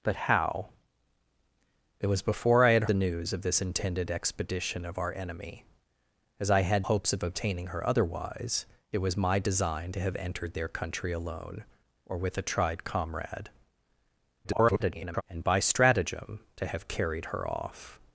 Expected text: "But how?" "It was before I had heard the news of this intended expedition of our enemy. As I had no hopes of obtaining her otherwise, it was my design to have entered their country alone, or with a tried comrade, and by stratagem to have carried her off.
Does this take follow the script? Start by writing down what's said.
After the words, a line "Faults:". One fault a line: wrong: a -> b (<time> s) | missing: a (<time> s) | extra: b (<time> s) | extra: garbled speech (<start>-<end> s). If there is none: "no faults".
"But how?" "It was before I had the news of this intended expedition of our enemy. As I had hopes of obtaining her otherwise, it was my design to have entered their country alone, or with a tried comrade, [garbled] and by stratagem to have carried her off.
Faults:
missing: heard (2.9 s)
missing: no (6.9 s)
extra: garbled speech (14.4-15.2 s)